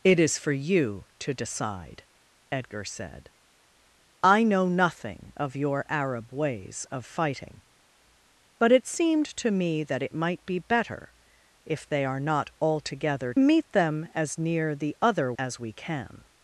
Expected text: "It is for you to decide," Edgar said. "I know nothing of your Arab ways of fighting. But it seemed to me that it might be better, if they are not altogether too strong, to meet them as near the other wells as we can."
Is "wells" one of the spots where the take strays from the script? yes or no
yes